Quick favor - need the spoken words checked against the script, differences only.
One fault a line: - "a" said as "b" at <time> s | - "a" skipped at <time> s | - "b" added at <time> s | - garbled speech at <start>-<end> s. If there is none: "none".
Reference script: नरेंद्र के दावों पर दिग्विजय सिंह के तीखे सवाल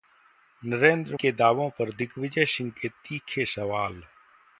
none